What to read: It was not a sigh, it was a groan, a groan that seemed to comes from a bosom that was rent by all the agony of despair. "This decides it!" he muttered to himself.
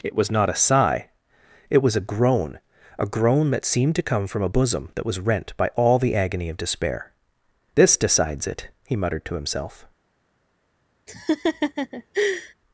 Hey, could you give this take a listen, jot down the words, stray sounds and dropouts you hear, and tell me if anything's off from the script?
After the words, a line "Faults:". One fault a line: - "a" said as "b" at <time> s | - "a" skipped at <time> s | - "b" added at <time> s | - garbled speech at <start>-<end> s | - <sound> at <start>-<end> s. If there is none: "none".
It was not a sigh, it was a groan, a groan that seemed to come from a bosom that was rent by all the agony of despair. "This decides it!" he muttered to himself.
Faults:
- "comes" said as "come" at 4.0 s
- laugh at 11.1-12.5 s